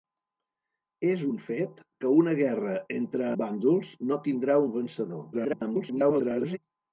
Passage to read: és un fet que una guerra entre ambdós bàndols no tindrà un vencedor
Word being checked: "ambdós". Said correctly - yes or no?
no